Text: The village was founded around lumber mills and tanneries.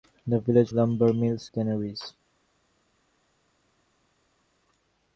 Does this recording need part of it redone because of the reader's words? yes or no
yes